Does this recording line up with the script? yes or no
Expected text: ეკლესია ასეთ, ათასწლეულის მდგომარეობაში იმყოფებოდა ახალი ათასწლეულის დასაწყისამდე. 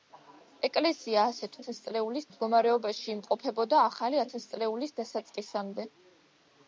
yes